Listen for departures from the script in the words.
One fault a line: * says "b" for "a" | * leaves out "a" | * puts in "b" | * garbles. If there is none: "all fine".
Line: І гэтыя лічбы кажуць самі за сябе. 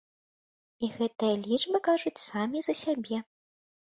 all fine